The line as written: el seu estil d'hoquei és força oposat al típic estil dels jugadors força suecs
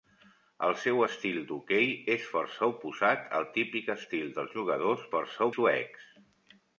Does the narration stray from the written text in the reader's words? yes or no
no